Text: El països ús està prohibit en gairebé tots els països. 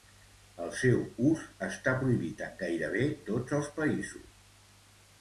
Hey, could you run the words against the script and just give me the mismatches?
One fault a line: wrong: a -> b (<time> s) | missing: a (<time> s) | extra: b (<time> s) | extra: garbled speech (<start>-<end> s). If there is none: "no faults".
wrong: països -> seu (0.8 s)